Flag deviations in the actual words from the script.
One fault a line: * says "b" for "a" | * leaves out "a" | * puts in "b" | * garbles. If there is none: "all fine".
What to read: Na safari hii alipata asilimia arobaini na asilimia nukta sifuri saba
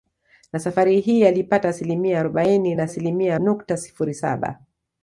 all fine